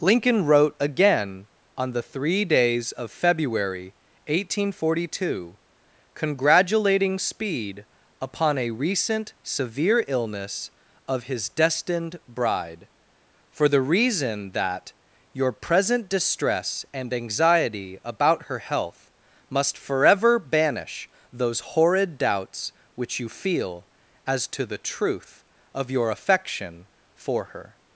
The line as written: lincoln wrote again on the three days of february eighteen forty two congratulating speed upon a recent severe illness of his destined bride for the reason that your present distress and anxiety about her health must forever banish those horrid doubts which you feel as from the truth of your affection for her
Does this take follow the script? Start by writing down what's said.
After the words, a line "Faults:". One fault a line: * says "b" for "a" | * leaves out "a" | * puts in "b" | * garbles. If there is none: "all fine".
lincoln wrote again on the three days of february eighteen forty two congratulating speed upon a recent severe illness of his destined bride for the reason that your present distress and anxiety about her health must forever banish those horrid doubts which you feel as to the truth of your affection for her
Faults:
* says "to" for "from"